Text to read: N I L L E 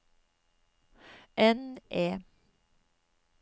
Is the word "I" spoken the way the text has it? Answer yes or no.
no